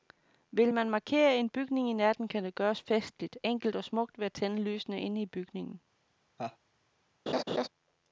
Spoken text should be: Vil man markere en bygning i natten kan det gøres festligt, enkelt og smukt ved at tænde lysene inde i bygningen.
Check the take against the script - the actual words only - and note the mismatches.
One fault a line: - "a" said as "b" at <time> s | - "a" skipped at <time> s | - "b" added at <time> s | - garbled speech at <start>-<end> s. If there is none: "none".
none